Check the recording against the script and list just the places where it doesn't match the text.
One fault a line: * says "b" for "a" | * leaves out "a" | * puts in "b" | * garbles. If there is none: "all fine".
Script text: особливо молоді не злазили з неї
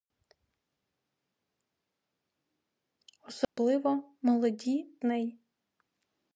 * leaves out "не злазили з"